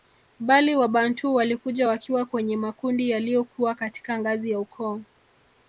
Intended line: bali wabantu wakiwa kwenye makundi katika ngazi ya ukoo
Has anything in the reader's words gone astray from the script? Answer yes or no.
yes